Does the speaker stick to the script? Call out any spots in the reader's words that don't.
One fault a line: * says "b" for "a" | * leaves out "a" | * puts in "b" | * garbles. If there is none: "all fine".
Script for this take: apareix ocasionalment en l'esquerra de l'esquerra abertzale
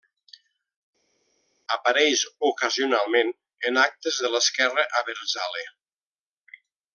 * says "actes" for "l'esquerra"